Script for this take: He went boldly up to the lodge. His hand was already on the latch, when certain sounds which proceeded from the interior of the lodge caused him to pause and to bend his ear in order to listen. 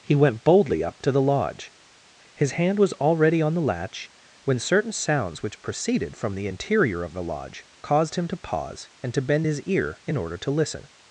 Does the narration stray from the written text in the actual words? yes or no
no